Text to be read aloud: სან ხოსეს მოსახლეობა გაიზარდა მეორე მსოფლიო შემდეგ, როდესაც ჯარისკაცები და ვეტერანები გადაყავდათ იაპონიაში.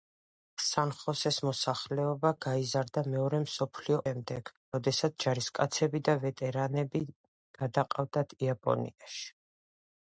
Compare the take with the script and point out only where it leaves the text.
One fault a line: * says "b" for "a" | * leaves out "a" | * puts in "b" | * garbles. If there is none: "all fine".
all fine